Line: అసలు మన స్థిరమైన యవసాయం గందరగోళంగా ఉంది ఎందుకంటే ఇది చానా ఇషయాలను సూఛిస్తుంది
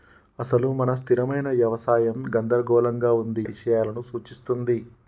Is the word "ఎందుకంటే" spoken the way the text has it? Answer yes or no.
no